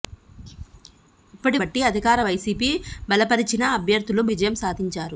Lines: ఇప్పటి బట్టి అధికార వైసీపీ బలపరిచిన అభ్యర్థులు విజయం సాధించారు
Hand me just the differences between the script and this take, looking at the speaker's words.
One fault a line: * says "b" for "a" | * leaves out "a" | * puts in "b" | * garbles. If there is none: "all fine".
all fine